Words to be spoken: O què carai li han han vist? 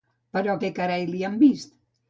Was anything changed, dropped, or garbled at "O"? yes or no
yes